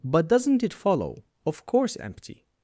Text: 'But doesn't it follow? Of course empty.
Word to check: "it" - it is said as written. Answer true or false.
true